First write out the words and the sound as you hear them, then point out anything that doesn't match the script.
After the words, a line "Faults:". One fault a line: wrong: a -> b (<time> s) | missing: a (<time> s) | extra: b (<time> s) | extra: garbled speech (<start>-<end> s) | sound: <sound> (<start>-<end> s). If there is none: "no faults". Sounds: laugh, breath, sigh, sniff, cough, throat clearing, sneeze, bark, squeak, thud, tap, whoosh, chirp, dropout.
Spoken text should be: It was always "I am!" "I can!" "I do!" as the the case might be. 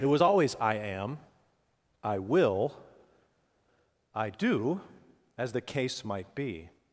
It was always "I am!" "I will!" "I do!" as the case might be.
Faults:
wrong: can -> will (2.2 s)
missing: the (5.6 s)